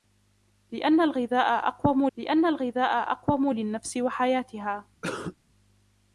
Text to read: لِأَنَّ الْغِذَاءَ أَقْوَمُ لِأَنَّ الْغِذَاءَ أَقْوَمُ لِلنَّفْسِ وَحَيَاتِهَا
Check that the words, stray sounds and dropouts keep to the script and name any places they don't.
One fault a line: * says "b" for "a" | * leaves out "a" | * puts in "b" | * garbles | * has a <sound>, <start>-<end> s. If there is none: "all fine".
* has a cough, 5.0-5.4 s